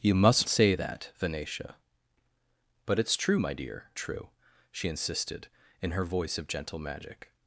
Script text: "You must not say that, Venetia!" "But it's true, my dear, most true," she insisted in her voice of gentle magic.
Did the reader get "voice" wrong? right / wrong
right